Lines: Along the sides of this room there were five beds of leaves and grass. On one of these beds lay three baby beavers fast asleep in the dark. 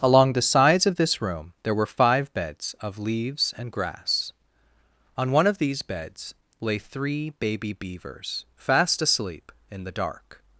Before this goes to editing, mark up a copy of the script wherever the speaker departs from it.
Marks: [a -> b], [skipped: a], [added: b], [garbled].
Along the sides of this room there were five beds of leaves and grass. On one of these beds lay three baby beavers fast asleep in the dark.